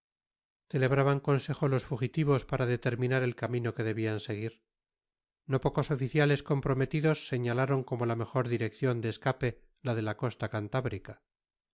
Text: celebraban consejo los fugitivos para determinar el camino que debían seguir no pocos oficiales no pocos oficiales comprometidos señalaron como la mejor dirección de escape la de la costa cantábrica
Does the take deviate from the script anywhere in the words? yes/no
yes